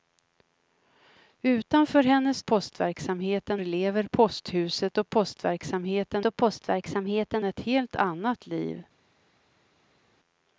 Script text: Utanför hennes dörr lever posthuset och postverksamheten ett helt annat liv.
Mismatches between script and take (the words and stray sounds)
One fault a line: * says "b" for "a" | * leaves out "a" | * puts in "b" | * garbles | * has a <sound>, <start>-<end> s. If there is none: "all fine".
* says "postverksamheten" for "dörr"
* puts in "och postverksamheten"